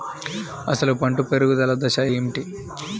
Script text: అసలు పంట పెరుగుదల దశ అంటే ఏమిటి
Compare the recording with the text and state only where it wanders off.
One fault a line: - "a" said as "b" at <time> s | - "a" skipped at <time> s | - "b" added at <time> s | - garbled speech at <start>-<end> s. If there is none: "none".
- "అంటే" skipped at 2.0 s